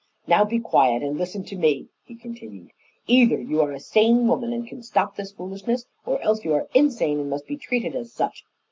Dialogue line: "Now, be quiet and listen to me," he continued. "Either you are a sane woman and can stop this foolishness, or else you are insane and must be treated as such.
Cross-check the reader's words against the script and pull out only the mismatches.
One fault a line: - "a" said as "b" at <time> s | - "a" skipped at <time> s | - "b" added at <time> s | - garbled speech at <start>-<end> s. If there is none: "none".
none